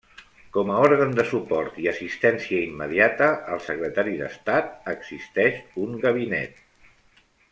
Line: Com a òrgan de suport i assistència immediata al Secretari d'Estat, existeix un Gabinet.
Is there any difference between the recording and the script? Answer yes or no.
no